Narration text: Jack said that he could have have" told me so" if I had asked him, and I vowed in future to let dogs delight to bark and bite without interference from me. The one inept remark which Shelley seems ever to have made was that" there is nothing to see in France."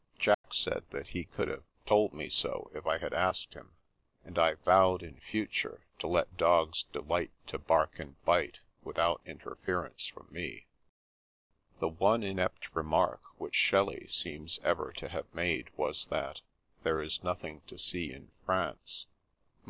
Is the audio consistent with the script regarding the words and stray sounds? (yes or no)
no